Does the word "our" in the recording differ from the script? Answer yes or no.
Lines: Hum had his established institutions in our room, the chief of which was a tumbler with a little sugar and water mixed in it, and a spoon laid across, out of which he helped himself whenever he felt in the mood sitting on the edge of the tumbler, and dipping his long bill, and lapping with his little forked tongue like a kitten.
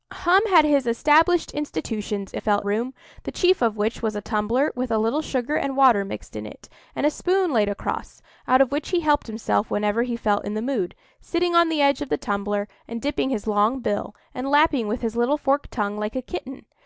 yes